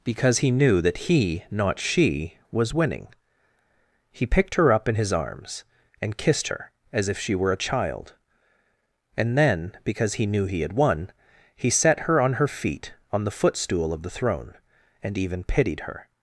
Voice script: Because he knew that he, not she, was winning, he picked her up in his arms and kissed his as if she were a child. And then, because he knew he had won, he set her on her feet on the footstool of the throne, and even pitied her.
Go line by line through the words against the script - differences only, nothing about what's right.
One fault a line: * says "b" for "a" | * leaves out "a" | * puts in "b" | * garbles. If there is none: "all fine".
* says "her" for "his"